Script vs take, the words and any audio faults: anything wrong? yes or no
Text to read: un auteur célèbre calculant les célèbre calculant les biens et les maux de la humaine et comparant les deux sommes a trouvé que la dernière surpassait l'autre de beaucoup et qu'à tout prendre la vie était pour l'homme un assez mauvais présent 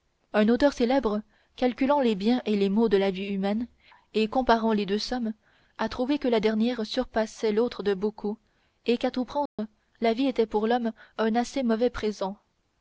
yes